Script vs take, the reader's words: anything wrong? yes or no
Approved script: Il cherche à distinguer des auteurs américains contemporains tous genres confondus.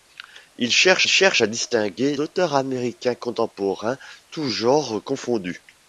yes